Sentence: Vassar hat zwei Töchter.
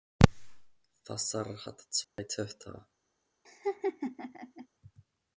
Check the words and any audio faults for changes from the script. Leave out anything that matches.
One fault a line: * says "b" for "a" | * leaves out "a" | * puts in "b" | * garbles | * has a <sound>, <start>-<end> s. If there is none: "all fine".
* has a dropout, 2.0-2.2 s
* has a laugh, 3.4-4.7 s